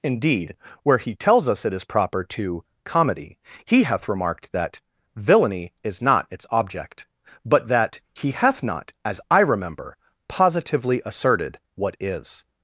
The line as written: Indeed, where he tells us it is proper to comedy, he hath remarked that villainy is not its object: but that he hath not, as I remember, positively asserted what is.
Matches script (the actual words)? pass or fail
pass